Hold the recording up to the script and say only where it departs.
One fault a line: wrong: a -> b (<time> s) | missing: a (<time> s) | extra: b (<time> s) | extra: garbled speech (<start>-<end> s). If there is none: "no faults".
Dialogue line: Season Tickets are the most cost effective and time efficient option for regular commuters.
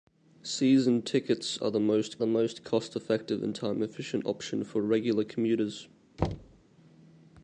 extra: the most (2.2 s)